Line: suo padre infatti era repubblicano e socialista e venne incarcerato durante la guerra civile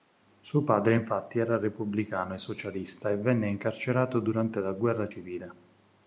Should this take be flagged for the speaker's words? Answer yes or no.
no